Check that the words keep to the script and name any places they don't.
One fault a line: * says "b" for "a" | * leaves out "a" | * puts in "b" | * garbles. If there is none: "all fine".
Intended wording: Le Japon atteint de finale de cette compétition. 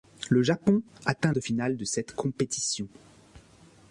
all fine